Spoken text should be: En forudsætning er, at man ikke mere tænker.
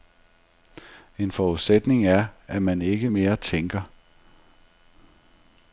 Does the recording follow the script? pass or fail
pass